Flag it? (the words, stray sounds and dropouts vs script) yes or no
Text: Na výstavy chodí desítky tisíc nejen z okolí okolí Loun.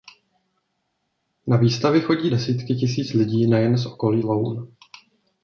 yes